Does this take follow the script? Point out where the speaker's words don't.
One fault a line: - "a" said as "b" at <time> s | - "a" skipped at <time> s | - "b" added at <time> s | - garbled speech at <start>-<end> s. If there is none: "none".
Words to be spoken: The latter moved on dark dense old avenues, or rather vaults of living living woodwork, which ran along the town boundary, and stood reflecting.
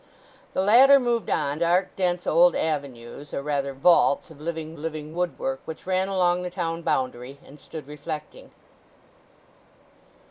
none